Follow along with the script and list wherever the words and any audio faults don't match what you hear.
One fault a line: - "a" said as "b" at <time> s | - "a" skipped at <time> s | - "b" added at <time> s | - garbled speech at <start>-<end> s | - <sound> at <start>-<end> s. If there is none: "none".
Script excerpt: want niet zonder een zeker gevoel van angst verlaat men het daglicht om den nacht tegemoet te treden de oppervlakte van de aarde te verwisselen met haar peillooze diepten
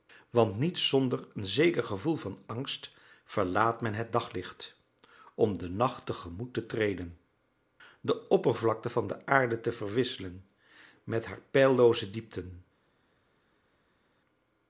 none